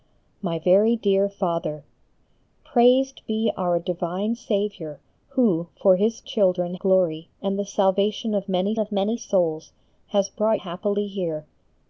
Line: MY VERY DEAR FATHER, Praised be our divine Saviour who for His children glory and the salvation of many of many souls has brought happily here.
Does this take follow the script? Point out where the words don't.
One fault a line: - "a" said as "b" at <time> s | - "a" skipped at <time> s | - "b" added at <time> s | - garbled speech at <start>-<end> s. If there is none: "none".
none